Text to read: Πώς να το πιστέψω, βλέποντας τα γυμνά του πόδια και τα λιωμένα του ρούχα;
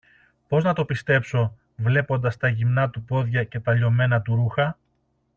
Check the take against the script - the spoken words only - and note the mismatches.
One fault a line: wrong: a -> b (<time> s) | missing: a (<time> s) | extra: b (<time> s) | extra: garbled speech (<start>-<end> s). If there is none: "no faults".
no faults